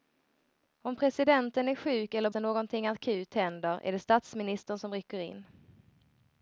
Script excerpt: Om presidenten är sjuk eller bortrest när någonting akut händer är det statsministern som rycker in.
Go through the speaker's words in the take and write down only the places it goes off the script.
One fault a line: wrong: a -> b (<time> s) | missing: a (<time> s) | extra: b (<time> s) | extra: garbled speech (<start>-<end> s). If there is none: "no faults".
missing: bortrest (2.3 s)